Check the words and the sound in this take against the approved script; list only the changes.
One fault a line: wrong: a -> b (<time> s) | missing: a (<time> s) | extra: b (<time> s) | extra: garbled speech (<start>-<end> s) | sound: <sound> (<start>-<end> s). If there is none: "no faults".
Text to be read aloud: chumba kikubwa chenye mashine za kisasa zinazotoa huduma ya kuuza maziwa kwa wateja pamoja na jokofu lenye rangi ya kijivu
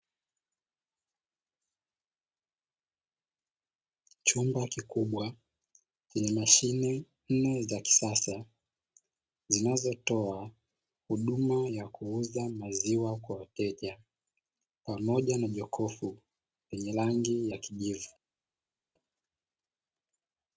extra: nne (7.3 s)